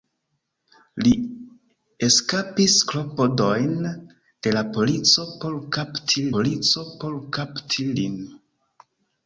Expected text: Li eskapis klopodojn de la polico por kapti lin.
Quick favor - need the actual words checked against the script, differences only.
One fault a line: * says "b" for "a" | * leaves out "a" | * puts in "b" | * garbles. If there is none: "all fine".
* puts in "polico por kapti"